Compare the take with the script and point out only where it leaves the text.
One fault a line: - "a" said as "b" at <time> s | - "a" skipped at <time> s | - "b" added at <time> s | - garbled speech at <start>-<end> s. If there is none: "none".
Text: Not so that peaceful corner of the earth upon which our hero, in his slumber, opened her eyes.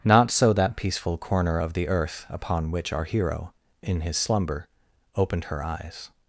none